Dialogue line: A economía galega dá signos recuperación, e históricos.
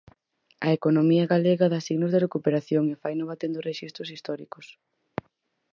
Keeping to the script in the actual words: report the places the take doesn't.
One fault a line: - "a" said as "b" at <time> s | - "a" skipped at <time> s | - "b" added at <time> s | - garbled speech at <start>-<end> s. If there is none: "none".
- "de" added at 2.1 s
- "faino batendo rexistros" added at 3.0 s